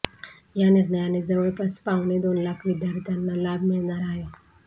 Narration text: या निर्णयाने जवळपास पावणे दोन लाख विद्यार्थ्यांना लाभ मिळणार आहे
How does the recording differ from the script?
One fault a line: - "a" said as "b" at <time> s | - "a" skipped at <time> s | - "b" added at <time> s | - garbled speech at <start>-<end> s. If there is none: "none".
none